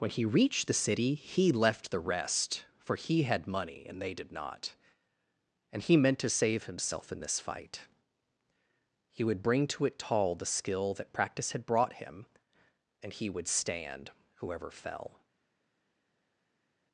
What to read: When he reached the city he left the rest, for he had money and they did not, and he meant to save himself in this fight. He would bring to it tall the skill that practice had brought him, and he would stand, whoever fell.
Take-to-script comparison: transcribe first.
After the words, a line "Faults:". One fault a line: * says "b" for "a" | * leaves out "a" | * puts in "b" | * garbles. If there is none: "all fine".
When he reached the city he left the rest, for he had money and they did not, and he meant to save himself in this fight. He would bring to it tall the skill that practice had brought him, and he would stand, whoever fell.
Faults:
all fine